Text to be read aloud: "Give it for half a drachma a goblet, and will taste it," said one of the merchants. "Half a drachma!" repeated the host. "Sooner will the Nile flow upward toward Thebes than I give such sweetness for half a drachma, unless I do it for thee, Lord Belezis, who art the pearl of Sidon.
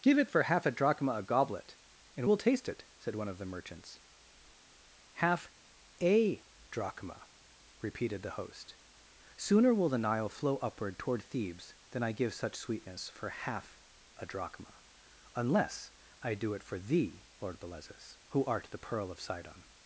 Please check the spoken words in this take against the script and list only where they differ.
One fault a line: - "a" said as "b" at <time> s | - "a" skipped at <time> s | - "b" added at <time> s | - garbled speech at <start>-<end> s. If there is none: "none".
none